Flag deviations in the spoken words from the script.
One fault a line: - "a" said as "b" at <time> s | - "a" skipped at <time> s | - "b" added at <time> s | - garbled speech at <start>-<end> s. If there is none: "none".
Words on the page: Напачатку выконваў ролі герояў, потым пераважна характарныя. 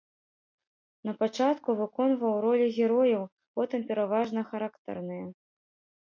none